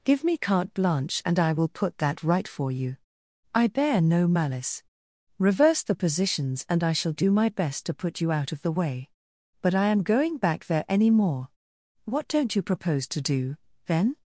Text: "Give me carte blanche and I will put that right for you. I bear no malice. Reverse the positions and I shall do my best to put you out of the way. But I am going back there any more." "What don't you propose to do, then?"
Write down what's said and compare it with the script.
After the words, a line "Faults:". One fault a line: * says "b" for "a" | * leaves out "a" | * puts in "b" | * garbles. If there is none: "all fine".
"Give me carte blanche and I will put that right for you. I bear no malice. Reverse the positions and I shall do my best to put you out of the way. But I am going back there any more." "What don't you propose to do, then?"
Faults:
all fine